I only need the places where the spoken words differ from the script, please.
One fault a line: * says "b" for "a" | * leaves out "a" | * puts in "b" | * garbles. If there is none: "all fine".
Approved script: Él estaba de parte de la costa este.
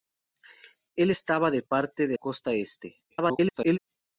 * leaves out "la"
* garbles